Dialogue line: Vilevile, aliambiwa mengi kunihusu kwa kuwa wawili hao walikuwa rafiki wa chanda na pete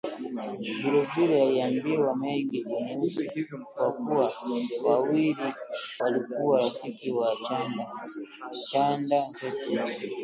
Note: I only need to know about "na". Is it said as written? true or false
false